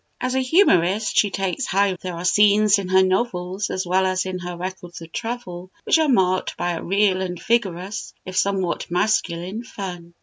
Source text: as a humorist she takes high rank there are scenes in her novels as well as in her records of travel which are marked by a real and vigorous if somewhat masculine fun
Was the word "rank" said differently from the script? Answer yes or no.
yes